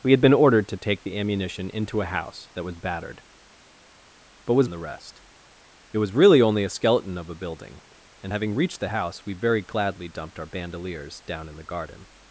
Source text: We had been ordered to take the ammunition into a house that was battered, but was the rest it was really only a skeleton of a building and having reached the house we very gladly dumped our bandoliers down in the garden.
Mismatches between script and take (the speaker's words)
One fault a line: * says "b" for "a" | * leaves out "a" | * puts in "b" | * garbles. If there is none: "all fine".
all fine